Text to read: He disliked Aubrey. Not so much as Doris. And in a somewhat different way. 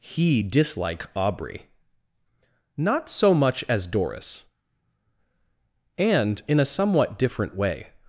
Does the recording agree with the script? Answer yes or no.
no